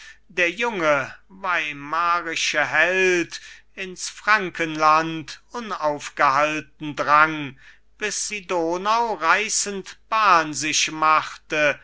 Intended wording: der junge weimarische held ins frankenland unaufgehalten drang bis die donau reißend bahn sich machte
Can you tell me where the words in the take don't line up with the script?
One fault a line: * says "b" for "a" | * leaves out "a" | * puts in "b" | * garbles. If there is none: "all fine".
all fine